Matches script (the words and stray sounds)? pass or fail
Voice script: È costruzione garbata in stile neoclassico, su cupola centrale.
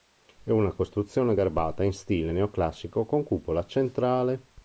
fail